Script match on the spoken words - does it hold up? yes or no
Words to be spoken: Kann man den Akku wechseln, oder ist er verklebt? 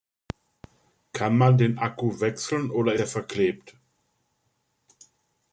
no